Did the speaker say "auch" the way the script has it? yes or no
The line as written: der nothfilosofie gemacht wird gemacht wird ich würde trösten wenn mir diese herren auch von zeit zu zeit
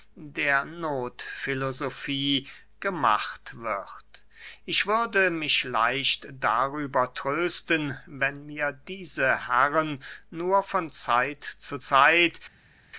no